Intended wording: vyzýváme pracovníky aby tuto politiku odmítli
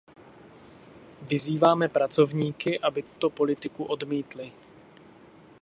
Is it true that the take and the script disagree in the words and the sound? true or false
true